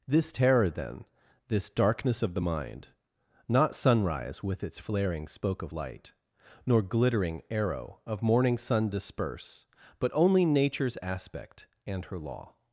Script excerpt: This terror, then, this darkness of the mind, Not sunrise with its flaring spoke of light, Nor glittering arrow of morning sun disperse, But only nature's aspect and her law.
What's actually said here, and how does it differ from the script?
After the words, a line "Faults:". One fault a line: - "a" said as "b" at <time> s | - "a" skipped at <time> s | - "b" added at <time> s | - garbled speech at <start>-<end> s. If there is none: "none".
This terror, then, this darkness of the mind, Not sunrise with its flaring spoke of light, Nor glittering arrow of morning sun disperse, But only nature's aspect and her law.
Faults:
none